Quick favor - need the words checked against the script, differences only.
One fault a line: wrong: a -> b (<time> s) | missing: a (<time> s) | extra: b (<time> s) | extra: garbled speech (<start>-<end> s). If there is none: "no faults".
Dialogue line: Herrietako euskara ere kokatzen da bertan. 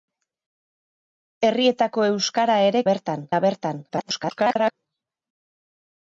wrong: kokatzen -> bertan (2.9 s)
extra: garbled speech (3.9-4.7 s)